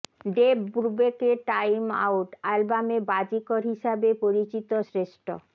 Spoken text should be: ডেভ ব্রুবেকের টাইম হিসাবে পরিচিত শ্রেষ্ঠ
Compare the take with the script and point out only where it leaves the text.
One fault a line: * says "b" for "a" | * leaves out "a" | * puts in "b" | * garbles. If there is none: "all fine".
* puts in "আউট অ্যালবামে বাজিকর"